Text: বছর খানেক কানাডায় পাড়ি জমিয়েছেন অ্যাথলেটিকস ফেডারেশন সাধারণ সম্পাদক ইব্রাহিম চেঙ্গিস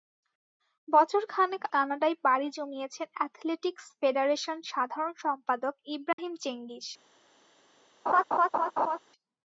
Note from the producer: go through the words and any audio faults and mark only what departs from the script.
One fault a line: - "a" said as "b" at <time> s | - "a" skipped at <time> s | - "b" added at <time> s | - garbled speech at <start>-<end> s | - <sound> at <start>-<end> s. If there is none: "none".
- dropout at 6.1-6.2 s
- laugh at 8.1-9.0 s